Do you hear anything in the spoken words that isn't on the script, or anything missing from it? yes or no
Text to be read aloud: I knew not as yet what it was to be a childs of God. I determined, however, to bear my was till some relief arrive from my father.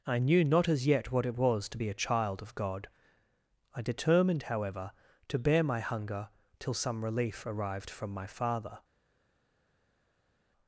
yes